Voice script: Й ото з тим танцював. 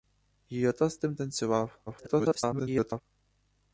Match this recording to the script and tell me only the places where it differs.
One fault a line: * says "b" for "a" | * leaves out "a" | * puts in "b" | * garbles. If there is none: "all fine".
* garbles